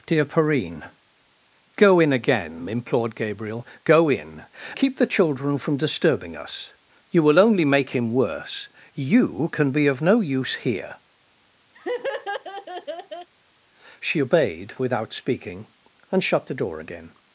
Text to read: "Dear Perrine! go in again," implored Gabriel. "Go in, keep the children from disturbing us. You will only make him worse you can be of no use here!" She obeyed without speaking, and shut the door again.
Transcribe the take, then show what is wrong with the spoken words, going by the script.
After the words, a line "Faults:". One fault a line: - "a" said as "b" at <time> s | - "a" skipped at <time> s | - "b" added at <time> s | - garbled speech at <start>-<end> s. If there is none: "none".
"Dear Perrine! go in again," implored Gabriel. "Go in, keep the children from disturbing us. You will only make him worse you can be of no use here!" She obeyed without speaking, and shut the door again.
Faults:
none